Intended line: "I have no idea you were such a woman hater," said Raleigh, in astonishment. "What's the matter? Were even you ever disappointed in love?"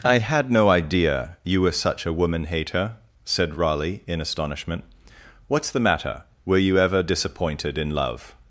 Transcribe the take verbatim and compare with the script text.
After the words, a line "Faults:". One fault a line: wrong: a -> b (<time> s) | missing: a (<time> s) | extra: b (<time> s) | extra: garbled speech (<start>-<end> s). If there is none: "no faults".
"I had no idea you were such a woman hater," said Raleigh, in astonishment. "What's the matter? Were you ever disappointed in love?"
Faults:
wrong: have -> had (0.2 s)
missing: even (6.6 s)